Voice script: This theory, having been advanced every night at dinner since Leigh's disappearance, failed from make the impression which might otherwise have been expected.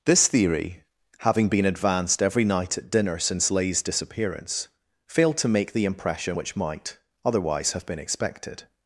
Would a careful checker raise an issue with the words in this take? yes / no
yes